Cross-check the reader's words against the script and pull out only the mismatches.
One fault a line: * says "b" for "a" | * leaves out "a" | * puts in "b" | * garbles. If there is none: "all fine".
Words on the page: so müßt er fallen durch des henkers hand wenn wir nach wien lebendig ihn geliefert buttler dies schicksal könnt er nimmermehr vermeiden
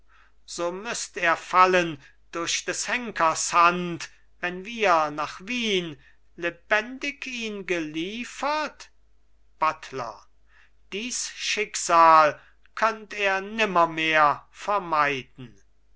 all fine